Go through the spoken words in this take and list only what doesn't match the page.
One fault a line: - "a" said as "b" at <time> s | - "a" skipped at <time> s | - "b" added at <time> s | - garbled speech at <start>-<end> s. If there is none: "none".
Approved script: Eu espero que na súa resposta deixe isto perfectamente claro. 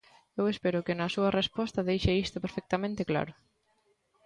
none